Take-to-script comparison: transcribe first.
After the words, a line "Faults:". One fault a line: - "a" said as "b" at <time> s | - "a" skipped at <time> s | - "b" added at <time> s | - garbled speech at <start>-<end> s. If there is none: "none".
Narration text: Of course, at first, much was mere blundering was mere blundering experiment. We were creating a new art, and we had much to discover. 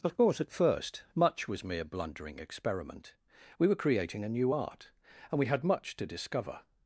Of course, at first, much was mere blundering experiment. We were creating a new art, and we had much to discover.
Faults:
- "was mere blundering" skipped at 2.4 s